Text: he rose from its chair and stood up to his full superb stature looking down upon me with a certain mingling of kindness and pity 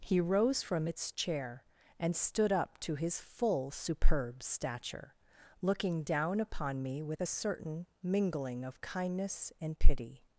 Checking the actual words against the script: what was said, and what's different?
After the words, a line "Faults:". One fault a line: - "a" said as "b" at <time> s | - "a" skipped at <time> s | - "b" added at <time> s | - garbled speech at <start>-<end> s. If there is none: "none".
he rose from its chair and stood up to his full superb stature looking down upon me with a certain mingling of kindness and pity
Faults:
none